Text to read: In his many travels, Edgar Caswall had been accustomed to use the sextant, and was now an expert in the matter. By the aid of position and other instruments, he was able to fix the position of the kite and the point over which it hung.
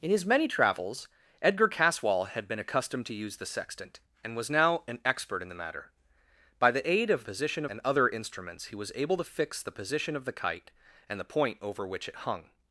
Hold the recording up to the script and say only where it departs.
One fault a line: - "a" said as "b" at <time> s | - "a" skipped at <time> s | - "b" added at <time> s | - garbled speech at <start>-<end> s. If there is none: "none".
none